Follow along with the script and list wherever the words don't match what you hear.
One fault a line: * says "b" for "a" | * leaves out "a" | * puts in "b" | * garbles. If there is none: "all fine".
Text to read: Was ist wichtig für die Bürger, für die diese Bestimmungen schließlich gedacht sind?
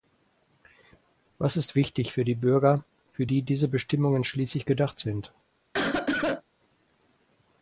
all fine